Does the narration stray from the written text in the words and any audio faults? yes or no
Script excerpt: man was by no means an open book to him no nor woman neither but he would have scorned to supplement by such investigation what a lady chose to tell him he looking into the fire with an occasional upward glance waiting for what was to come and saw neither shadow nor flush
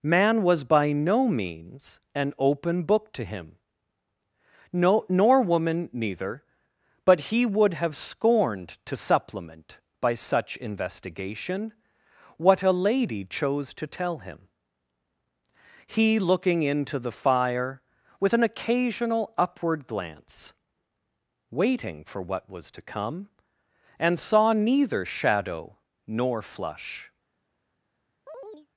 yes